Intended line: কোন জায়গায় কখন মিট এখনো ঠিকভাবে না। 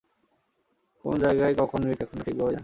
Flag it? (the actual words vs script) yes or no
no